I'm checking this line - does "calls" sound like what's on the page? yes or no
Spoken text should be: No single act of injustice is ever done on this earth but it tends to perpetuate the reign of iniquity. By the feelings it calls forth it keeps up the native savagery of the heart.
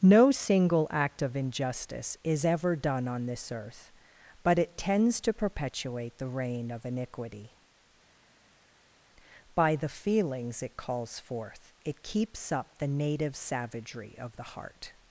yes